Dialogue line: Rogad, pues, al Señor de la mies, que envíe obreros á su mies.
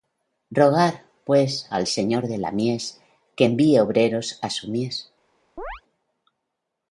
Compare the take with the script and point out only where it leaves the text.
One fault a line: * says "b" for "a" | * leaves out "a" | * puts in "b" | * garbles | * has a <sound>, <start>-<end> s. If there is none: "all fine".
* has a chirp, 5.6-5.8 s